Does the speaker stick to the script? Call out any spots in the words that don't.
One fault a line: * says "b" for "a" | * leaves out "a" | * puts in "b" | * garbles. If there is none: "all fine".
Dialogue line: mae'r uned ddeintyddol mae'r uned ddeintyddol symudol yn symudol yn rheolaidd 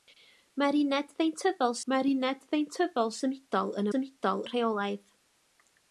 all fine